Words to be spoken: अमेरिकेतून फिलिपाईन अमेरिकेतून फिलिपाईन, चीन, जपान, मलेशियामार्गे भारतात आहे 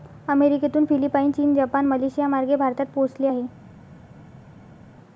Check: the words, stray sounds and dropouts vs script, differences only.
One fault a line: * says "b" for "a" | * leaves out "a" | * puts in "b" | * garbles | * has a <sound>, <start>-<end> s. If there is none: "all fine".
* leaves out "अमेरिकेतून फिलिपाईन"
* puts in "पोहोचले"